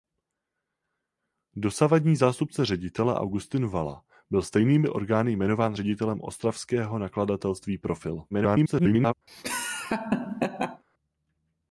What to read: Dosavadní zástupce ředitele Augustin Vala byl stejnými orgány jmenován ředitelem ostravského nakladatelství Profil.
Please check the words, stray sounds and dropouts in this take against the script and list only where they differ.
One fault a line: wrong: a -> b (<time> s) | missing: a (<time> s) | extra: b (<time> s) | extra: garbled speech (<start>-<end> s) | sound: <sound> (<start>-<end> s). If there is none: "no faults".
extra: garbled speech (8.3-9.1 s)
sound: laugh (9.3-10.8 s)